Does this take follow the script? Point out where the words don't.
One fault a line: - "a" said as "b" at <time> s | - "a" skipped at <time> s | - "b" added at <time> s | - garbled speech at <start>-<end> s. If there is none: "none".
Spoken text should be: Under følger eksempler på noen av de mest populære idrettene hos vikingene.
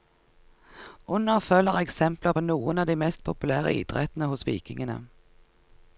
none